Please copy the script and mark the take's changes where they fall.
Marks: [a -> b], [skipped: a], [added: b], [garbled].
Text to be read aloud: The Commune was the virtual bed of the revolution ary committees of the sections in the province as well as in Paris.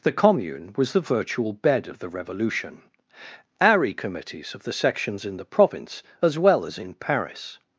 The Commune was the virtual bed of the revolution ary committees of the sections in the province as well as in Paris.